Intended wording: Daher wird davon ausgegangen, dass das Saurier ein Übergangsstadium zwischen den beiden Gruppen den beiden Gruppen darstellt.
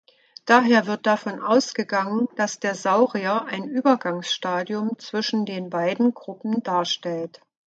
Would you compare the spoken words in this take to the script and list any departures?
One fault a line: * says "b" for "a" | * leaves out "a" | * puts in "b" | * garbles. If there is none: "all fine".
* says "der" for "das"
* leaves out "den beiden Gruppen"